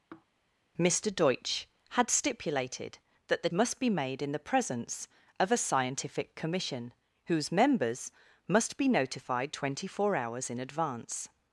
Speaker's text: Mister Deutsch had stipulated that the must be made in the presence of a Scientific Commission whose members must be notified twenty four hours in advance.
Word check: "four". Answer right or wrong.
right